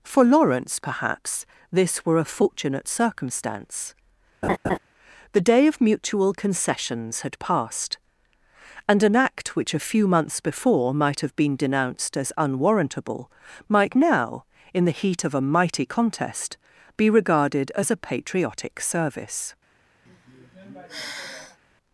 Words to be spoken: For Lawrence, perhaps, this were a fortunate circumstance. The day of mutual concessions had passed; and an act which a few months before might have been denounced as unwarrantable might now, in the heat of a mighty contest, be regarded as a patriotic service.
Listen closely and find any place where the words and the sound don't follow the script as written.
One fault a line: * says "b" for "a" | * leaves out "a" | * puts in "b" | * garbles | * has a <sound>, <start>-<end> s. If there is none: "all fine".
* has a laugh, 4.4-4.8 s
* has a sigh, 20.1-21.6 s